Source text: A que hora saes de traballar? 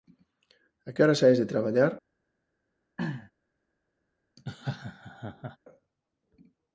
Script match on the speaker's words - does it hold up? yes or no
yes